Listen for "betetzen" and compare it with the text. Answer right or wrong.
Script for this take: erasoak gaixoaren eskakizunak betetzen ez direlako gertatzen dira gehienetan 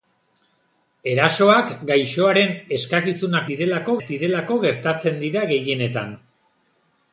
wrong